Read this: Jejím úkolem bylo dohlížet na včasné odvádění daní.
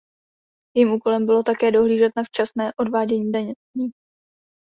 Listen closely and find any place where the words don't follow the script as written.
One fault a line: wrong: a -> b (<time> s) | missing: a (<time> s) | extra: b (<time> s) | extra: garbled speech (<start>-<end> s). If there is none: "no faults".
extra: také (1.4 s)